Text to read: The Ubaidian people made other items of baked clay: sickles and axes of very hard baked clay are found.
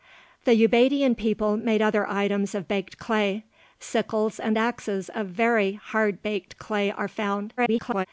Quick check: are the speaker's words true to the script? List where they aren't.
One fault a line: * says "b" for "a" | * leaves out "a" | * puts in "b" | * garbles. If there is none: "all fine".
* garbles